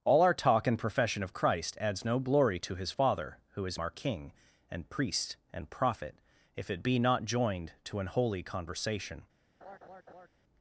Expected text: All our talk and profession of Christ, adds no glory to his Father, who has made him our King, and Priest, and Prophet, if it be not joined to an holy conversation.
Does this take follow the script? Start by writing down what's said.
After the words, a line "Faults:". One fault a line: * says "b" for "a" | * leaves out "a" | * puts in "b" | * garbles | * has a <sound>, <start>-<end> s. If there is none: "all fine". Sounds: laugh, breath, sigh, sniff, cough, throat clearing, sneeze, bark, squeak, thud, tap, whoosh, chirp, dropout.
All our talk and profession of Christ, adds no glory to his Father, who has our King, and Priest, and Prophet, if it be not joined to an holy conversation.
Faults:
* leaves out "made him"
* has a laugh, 9.6-10.3 s